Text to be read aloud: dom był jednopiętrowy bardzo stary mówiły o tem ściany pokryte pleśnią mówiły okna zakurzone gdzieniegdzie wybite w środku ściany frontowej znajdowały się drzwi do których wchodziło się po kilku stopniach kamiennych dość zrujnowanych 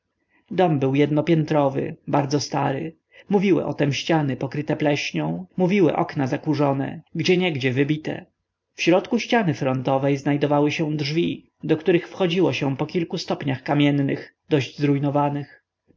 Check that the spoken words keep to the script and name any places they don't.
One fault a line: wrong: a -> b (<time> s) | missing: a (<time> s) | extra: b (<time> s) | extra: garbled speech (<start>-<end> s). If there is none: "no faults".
no faults